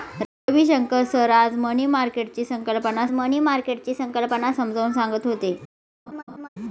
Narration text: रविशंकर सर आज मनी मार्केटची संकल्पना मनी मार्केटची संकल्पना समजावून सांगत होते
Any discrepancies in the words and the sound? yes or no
yes